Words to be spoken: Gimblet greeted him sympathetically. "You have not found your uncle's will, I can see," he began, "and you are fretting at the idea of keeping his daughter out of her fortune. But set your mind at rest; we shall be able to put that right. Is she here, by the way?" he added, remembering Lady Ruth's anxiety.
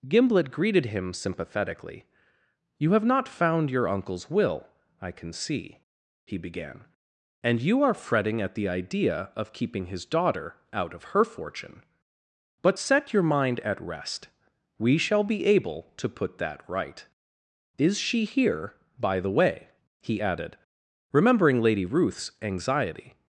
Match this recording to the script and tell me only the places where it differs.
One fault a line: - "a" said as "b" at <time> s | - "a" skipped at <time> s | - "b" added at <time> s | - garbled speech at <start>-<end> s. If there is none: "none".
none